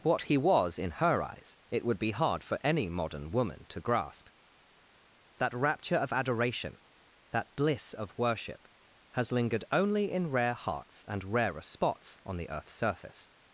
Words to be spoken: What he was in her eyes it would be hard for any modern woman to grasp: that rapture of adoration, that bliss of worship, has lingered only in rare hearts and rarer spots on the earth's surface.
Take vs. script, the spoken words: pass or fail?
pass